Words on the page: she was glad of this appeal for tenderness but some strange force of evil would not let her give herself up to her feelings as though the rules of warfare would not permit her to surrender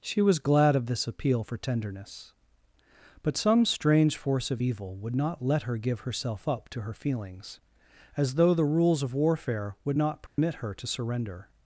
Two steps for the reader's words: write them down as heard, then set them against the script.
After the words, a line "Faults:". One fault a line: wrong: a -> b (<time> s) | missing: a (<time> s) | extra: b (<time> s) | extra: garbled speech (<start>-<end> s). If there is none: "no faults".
she was glad of this appeal for tenderness but some strange force of evil would not let her give herself up to her feelings as though the rules of warfare would not permit her to surrender
Faults:
no faults